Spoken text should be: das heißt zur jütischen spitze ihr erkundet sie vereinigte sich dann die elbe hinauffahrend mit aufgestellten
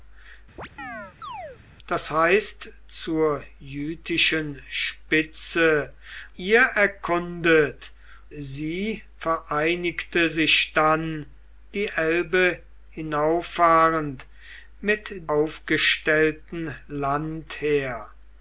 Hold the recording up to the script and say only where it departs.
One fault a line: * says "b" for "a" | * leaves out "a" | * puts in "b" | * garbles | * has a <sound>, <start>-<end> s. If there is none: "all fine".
* has a chirp, 0.6-1.6 s